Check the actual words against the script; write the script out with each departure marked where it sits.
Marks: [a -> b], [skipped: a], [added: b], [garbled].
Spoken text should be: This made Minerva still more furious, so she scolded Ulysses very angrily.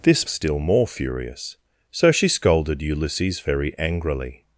This [skipped: made Minerva] still more furious, so she scolded Ulysses very angrily.